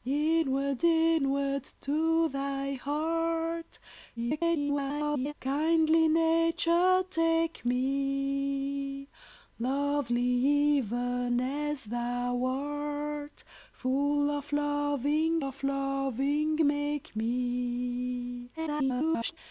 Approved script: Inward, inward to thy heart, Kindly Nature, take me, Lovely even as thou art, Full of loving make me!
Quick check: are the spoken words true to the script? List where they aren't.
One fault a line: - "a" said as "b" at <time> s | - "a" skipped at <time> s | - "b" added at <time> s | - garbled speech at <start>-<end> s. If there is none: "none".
- garbled speech at 4.2-5.3 s
- "of loving" added at 15.4 s
- garbled speech at 18.6-19.4 s